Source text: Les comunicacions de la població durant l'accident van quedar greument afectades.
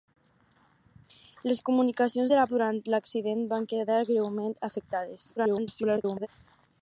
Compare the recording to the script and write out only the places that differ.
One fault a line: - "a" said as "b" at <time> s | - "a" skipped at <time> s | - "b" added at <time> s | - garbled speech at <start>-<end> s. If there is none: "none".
- "població" skipped at 2.5 s
- garbled speech at 5.4-6.3 s